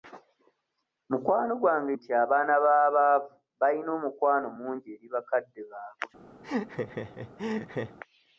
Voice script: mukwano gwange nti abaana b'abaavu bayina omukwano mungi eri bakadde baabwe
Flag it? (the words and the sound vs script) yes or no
yes